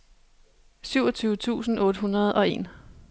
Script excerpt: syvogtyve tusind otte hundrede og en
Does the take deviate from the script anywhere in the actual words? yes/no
no